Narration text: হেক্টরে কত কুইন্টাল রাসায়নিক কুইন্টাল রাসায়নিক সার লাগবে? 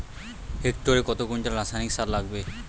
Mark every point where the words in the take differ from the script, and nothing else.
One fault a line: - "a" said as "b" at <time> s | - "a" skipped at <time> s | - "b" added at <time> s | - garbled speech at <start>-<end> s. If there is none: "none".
- "কুইন্টাল রাসায়নিক" skipped at 1.9 s